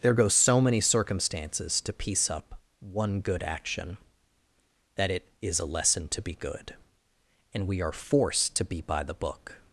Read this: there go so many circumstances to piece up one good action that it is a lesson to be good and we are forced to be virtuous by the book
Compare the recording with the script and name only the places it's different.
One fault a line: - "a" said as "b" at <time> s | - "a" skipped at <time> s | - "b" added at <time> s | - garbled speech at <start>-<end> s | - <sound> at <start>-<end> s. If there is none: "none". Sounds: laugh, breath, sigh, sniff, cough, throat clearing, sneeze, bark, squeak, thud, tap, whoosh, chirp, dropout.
- "virtuous" skipped at 8.8 s